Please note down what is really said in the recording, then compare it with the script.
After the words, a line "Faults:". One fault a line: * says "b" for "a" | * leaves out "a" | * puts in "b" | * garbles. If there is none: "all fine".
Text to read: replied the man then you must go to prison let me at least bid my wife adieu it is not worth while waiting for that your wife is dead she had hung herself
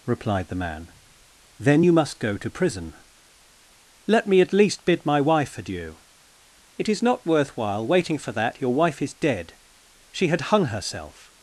replied the man then you must go to prison let me at least bid my wife adieu it is not worth while waiting for that your wife is dead she had hung herself
Faults:
all fine